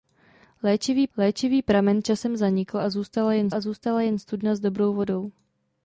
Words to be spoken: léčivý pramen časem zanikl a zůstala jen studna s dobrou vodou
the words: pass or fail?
fail